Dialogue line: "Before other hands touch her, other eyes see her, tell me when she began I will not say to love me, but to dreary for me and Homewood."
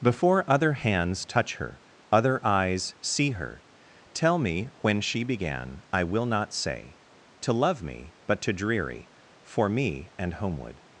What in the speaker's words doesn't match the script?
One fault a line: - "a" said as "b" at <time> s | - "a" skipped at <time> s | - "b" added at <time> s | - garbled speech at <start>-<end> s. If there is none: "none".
none